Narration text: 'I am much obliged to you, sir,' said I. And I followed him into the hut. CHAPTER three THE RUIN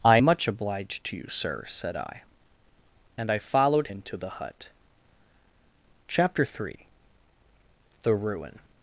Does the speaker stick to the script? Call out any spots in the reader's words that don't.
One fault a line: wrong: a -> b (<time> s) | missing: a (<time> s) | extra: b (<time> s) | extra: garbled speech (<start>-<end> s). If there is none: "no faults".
missing: am (0.2 s)
missing: him (3.9 s)